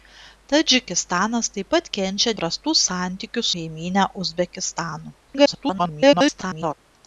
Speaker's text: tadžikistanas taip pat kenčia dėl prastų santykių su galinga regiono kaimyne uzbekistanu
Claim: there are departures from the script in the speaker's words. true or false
true